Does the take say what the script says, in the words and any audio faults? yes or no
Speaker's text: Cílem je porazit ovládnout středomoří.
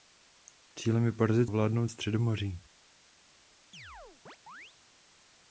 no